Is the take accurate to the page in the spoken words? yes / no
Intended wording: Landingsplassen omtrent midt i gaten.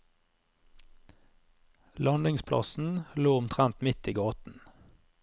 no